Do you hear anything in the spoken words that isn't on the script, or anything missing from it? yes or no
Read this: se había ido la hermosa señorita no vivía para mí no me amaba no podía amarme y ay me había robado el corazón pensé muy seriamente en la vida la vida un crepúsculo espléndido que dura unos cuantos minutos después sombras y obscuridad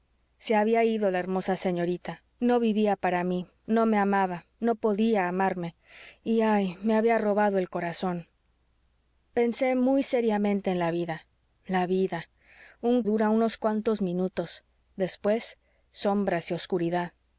yes